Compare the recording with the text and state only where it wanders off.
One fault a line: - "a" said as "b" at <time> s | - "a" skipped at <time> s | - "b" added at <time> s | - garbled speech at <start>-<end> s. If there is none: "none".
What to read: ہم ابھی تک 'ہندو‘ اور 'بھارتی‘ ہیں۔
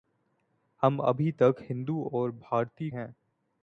none